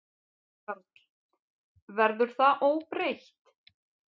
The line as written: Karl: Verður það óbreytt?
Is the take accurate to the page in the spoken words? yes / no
yes